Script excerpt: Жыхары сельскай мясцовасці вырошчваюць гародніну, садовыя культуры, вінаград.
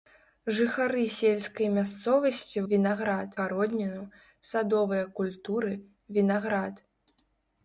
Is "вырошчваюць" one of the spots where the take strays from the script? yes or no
yes